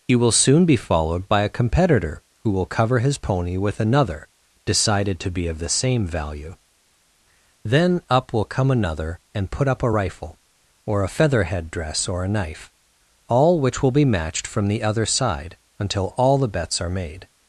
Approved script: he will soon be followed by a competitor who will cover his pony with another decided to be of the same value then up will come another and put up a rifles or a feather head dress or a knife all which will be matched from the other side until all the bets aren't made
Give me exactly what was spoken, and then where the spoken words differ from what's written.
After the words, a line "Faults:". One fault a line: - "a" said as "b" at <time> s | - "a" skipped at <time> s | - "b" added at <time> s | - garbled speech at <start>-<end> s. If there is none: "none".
he will soon be followed by a competitor who will cover his pony with another decided to be of the same value then up will come another and put up a rifle or a feather head dress or a knife all which will be matched from the other side until all the bets are made
Faults:
- "rifles" said as "rifle" at 9.9 s
- "aren't" said as "are" at 16.8 s